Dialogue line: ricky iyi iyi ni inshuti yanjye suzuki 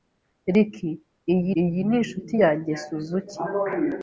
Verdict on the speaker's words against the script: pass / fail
pass